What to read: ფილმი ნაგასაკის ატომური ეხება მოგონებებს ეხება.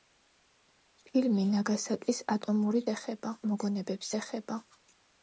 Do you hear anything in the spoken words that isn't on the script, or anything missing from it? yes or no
no